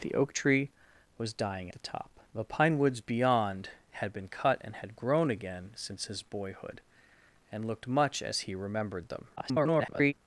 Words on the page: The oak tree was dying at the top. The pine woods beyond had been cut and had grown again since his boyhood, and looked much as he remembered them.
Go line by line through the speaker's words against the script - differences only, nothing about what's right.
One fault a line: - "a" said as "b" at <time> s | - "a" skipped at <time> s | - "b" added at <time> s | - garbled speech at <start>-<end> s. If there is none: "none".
- "at" skipped at 1.7 s
- garbled speech at 9.4-10.1 s